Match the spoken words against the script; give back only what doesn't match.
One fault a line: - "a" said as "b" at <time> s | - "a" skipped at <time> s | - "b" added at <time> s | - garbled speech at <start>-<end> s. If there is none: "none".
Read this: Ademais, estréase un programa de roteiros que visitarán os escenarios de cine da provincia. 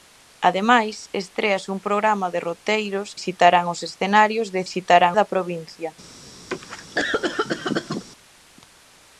- "que" skipped at 3.1 s
- "cine" said as "visitarán" at 4.7 s